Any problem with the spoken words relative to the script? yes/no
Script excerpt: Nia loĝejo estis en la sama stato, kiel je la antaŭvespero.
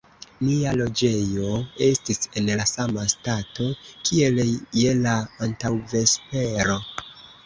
no